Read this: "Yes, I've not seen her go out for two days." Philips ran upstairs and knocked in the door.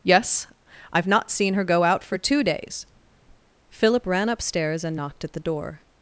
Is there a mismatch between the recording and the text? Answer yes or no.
yes